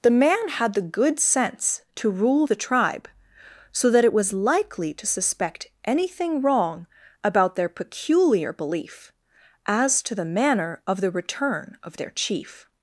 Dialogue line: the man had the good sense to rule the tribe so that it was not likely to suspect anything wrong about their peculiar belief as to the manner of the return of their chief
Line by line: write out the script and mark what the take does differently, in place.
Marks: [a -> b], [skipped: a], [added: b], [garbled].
the man had the good sense to rule the tribe so that it was [skipped: not] likely to suspect anything wrong about their peculiar belief as to the manner of the return of their chief